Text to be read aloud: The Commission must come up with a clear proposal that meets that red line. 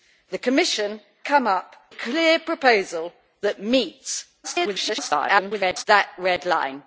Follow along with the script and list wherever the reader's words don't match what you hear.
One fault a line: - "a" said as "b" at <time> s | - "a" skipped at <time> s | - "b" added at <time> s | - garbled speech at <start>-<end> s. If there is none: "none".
- "must" skipped at 1.0 s
- "with" skipped at 1.8 s
- garbled speech at 4.4-5.9 s